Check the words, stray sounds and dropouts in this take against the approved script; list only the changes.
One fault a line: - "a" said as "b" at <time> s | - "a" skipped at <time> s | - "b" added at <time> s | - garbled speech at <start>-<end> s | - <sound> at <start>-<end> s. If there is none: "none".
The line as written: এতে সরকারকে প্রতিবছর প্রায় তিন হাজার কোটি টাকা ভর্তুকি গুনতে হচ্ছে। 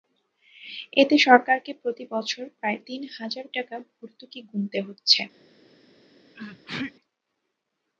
- "কোটি" skipped at 3.5 s
- sneeze at 6.3-6.9 s